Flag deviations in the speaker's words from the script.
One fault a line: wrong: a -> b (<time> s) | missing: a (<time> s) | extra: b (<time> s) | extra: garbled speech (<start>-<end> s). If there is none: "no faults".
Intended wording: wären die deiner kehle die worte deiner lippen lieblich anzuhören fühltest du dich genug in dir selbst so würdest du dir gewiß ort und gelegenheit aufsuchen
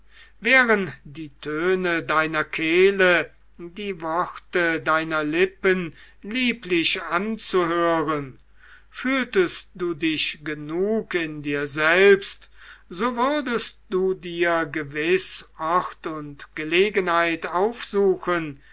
extra: töne (1.4 s)